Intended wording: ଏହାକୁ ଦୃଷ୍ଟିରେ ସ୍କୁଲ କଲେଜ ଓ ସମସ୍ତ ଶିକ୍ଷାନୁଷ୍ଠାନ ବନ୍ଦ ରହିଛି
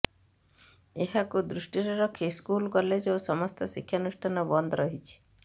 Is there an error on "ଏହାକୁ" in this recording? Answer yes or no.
no